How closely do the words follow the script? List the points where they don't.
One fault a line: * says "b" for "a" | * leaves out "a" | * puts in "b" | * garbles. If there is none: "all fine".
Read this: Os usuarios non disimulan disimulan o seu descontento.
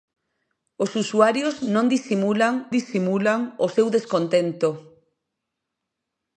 all fine